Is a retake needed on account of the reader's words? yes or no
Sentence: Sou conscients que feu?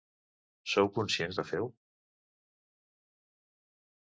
no